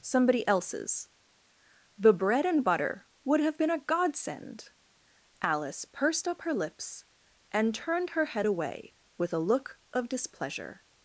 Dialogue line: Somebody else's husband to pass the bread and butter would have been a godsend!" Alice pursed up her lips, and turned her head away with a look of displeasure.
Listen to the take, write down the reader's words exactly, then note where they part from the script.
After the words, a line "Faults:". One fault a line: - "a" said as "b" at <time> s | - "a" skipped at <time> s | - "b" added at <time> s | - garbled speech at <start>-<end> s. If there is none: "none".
Somebody else's the bread and butter would have been a godsend!" Alice pursed up her lips, and turned her head away with a look of displeasure.
Faults:
- "husband to pass" skipped at 1.1 s